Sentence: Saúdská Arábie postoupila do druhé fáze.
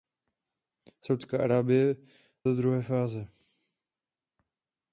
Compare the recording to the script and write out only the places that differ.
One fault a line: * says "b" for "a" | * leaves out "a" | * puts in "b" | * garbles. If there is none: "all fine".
* leaves out "postoupila"